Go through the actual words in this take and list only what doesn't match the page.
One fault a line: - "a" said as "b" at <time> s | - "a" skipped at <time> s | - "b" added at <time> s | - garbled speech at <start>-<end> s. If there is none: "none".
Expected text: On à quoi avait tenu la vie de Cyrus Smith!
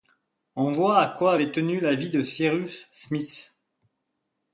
- "voit" added at 0.7 s